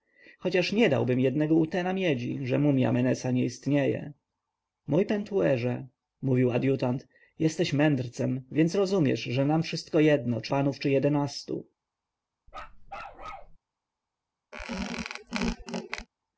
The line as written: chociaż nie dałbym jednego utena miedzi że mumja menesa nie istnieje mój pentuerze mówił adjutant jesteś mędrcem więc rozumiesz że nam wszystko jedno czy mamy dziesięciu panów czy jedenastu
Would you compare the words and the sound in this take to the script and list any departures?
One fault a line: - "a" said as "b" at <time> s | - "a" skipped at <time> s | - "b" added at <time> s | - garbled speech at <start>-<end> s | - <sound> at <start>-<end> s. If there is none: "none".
- "mamy dziesięciu" skipped at 10.5 s
- bark at 12.5-13.6 s
- squeak at 14.5-16.1 s